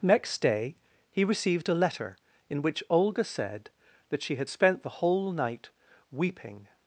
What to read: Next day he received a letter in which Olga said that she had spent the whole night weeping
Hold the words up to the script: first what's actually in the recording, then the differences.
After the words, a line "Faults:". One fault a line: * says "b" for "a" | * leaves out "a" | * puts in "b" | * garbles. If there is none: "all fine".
Next day he received a letter in which Olga said that she had spent the whole night weeping
Faults:
all fine